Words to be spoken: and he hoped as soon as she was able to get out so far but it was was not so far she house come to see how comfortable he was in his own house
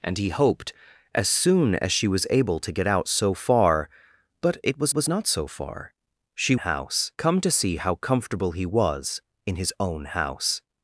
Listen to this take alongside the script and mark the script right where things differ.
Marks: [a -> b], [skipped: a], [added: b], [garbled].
and he hoped as soon as she was able to get out so far but it was was not so far she house come to see how comfortable he was in his own house